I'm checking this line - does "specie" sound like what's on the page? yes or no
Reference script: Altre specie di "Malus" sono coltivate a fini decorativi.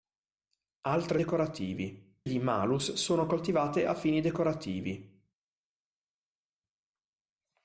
no